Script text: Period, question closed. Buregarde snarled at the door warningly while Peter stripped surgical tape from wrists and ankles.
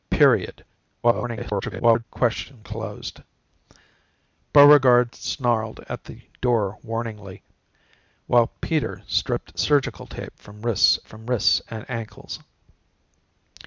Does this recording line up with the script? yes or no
no